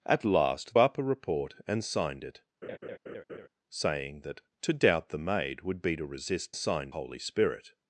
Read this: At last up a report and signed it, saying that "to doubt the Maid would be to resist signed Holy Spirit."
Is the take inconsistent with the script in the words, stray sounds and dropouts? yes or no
yes